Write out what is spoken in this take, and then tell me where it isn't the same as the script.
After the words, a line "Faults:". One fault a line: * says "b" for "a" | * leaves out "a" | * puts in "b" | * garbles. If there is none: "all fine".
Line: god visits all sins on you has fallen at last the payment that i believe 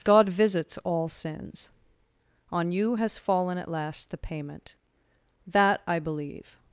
god visits all sins on you has fallen at last the payment that i believe
Faults:
all fine